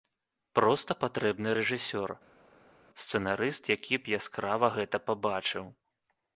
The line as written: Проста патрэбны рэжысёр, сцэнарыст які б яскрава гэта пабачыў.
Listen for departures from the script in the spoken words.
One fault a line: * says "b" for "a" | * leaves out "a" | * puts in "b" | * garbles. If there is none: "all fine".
all fine